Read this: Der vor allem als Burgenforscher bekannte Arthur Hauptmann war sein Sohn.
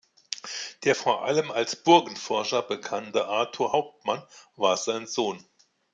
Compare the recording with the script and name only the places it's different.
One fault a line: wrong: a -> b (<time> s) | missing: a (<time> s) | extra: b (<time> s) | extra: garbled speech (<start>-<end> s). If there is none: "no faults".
no faults